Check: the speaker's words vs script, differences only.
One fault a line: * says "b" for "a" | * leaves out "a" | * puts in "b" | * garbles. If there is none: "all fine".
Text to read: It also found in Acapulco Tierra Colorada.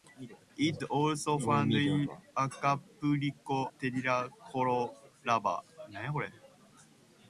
all fine